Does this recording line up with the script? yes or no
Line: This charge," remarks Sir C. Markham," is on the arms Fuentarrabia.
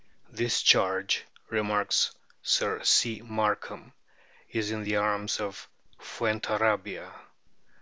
no